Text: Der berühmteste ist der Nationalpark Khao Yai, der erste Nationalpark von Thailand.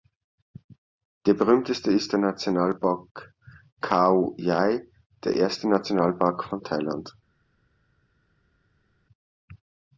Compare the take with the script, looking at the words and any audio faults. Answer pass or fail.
pass